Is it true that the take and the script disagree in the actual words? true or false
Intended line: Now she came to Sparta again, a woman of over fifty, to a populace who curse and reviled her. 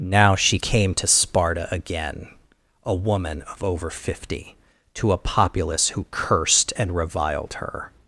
true